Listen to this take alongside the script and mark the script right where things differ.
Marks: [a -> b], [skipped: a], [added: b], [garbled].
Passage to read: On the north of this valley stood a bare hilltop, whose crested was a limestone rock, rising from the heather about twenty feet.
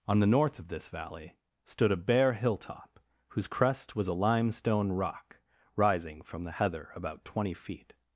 On the north of this valley stood a bare hilltop, whose [crested -> crest] was a limestone rock, rising from the heather about twenty feet.